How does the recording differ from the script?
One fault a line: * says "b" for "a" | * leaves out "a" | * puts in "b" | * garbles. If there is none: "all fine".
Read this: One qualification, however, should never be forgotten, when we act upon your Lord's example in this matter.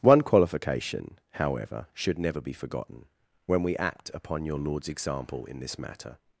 all fine